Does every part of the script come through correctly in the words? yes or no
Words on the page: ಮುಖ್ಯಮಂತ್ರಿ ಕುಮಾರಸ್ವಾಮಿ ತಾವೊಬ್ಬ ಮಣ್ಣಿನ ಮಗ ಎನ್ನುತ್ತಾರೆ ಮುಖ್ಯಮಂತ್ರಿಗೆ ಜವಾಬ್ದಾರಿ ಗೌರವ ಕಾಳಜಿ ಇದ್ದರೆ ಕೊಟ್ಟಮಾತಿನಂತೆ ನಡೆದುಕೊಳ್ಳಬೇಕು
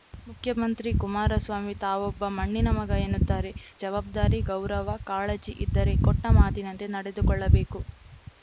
no